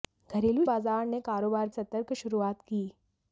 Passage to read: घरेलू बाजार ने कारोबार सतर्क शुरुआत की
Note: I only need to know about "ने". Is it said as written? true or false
true